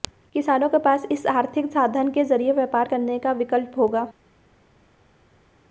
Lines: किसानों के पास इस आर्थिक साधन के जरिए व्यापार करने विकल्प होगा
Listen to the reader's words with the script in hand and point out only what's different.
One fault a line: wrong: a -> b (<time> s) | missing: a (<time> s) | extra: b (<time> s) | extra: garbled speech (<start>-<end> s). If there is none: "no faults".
extra: का (3.2 s)